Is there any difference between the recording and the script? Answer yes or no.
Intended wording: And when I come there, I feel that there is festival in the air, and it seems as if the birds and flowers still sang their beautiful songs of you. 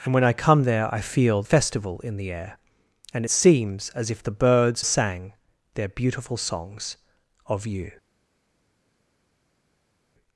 yes